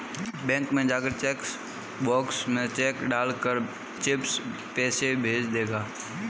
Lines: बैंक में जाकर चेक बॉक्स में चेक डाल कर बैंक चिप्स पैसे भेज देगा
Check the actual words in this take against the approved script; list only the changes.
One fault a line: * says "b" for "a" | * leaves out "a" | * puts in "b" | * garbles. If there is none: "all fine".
* leaves out "बैंक"